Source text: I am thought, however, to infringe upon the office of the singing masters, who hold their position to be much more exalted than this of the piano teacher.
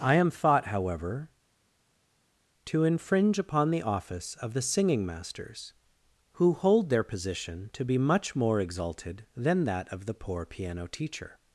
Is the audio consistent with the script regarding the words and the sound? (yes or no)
no